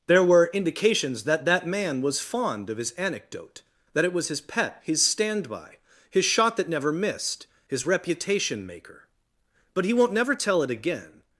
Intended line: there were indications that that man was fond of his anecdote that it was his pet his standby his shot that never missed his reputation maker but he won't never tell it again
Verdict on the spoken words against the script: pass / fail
pass